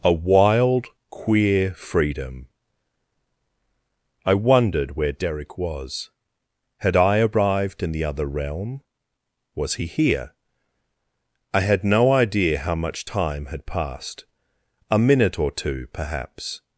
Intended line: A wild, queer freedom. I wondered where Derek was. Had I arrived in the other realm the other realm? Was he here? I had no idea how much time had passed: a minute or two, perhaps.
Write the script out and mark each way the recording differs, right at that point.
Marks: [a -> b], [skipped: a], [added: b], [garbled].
A wild, queer freedom. I wondered where Derek was. Had I arrived in the other realm [skipped: the other realm?] Was he here? I had no idea how much time had passed: a minute or two, perhaps.